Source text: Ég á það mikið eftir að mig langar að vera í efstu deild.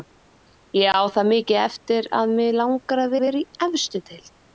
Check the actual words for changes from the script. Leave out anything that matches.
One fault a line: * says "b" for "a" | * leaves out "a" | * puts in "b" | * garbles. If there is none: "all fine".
* puts in "að"